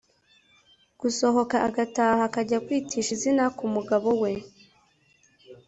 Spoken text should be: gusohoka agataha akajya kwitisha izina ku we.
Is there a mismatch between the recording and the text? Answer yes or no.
yes